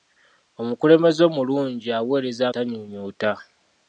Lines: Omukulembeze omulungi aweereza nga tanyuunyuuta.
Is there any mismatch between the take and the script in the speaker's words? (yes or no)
yes